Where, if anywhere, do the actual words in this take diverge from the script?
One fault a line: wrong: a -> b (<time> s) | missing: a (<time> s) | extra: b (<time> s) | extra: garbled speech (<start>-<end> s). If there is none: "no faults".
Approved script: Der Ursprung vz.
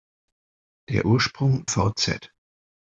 no faults